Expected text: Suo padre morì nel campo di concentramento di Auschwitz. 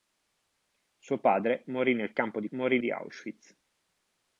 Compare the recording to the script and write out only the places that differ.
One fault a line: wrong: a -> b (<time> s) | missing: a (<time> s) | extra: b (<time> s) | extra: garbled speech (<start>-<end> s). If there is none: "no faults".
wrong: concentramento -> morì (2.5 s)